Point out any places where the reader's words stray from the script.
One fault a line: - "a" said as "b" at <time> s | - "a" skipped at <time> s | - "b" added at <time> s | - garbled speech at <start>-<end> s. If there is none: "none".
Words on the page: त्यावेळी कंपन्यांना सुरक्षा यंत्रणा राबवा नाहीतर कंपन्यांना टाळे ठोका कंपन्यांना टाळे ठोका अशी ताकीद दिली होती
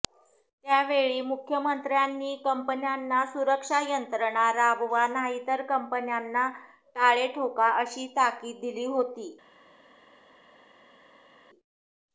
- "मुख्यमंत्र्यांनी" added at 1.2 s
- "कंपन्यांना टाळे ठोका" skipped at 7.7 s